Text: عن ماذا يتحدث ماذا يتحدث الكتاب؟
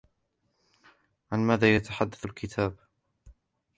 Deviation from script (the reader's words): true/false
true